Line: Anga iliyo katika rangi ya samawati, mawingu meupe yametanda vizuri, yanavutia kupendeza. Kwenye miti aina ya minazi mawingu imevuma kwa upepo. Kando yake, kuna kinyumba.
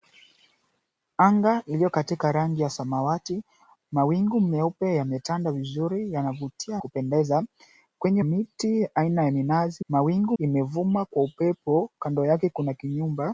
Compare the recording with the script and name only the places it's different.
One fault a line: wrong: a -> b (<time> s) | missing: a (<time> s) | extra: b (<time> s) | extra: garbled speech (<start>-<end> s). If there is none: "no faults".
no faults